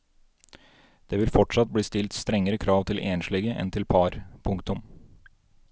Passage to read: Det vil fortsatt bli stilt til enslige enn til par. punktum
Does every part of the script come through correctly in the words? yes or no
no